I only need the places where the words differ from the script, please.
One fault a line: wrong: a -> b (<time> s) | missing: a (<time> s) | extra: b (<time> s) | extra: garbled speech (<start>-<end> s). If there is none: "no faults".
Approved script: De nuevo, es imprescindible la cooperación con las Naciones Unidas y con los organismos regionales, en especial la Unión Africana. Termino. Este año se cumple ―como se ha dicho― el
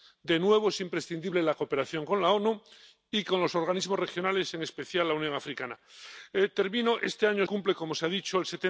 missing: se (7.5 s)